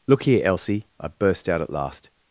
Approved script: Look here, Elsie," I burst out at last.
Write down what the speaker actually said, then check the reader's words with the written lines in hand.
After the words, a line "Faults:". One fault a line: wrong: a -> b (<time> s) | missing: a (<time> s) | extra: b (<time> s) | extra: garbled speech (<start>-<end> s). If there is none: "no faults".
Look here, Elsie," I burst out at last.
Faults:
no faults